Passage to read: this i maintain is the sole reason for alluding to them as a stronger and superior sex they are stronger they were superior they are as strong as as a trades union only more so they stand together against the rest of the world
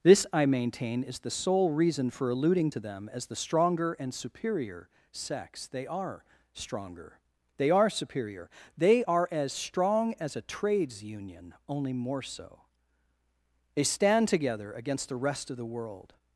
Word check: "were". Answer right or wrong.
wrong